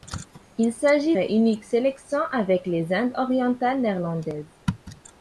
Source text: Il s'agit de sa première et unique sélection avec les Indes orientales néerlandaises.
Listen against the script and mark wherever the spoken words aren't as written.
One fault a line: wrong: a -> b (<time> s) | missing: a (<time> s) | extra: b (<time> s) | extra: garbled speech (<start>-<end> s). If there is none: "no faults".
missing: de sa première (1.1 s)